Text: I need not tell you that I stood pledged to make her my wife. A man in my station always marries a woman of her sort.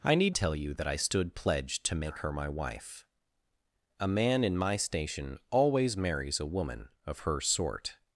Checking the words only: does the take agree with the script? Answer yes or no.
no